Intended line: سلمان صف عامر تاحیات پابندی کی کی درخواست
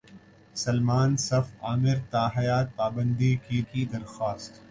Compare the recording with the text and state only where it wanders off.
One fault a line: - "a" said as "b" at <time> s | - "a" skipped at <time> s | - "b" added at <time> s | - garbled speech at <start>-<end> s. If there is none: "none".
none